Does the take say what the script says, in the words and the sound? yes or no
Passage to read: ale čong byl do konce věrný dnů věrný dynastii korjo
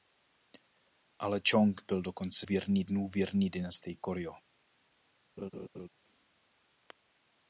no